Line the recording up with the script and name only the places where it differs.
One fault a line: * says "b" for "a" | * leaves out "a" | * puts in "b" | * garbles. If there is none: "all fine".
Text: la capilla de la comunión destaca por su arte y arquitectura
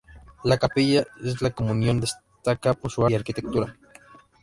* leaves out "arte"